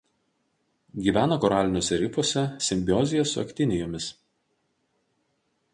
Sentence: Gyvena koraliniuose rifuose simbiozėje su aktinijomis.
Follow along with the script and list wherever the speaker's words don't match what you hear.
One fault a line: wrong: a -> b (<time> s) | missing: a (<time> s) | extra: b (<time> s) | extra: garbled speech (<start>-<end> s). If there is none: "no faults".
no faults